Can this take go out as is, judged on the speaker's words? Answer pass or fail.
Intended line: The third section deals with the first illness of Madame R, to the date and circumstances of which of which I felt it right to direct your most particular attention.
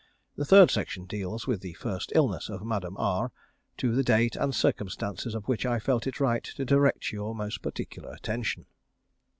fail